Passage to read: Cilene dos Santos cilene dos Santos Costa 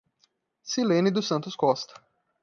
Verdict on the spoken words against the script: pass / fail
fail